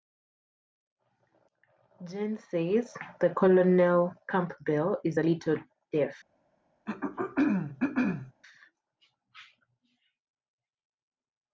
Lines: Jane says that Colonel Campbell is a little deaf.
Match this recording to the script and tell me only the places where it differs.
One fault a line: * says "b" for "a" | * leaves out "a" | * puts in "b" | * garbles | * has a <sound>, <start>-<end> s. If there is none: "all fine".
* has a throat clearing, 6.9-8.3 s